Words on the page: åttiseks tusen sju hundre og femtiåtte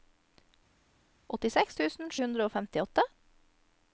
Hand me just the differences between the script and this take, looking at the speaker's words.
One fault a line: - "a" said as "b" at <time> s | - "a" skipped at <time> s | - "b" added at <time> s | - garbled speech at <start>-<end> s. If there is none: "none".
- "sju" skipped at 2.1 s